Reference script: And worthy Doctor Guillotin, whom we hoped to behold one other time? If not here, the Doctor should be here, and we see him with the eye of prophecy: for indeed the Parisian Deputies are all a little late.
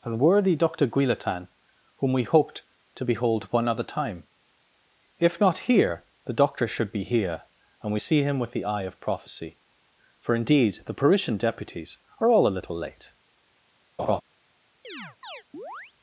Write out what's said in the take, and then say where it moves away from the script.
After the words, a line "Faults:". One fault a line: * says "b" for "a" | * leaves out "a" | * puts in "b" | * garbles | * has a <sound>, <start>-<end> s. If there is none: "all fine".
And worthy Doctor Guillotin, whom we hoped to behold one other time? If not here, the Doctor should be here, and we see him with the eye of prophecy: for indeed the Parisian Deputies are all a little late.
Faults:
* has a laugh, 14.0-14.2 s
* has a chirp, 14.8-15.9 s